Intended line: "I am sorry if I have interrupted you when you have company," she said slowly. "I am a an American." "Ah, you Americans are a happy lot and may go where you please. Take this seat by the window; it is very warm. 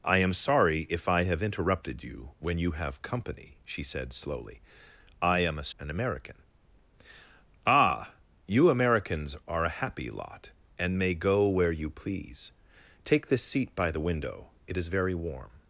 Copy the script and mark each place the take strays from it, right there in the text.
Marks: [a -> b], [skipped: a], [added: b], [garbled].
"I am sorry if I have interrupted you when you have company," she said slowly. "I am a an American." "Ah, you Americans are a happy lot and may go where you please. Take this seat by the window; it is very warm.